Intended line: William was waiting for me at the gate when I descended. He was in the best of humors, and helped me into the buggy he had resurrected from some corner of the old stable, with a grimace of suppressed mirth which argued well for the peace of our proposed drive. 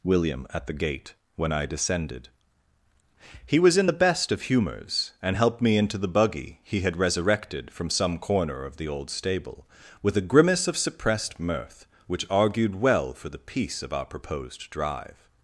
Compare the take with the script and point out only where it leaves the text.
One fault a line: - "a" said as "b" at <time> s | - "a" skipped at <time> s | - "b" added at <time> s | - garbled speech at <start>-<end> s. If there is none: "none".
- "was waiting for me" skipped at 0.5 s